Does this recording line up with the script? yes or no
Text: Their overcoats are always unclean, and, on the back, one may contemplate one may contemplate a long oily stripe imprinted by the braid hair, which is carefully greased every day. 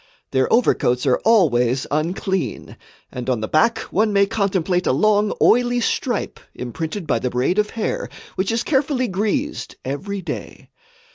no